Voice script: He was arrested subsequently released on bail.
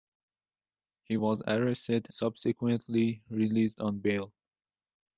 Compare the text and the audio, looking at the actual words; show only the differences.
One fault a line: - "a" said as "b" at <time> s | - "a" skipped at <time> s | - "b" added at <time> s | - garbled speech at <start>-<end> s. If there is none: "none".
none